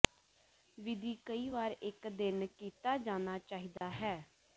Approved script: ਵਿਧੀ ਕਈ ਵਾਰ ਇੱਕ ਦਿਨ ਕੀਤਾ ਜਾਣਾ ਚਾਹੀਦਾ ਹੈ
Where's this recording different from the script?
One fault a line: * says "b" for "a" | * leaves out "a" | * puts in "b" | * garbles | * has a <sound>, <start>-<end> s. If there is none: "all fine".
* has a dropout, 3.8-3.8 s